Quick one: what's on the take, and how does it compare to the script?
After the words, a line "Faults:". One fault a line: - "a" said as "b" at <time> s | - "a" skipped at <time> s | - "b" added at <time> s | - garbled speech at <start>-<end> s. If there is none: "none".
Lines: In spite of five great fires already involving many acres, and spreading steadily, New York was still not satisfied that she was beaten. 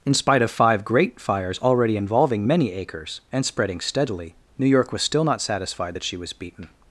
In spite of five great fires already involving many acres, and spreading steadily, New York was still not satisfied that she was beaten.
Faults:
none